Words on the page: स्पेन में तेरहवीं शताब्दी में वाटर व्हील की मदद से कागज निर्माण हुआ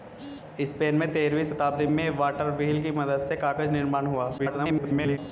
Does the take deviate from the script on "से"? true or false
false